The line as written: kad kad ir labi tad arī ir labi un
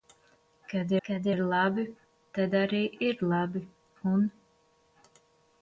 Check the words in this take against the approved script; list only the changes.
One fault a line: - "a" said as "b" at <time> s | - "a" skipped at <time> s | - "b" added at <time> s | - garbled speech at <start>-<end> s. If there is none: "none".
none